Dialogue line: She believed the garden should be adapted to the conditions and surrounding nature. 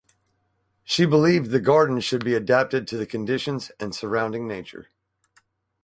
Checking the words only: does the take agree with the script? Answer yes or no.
yes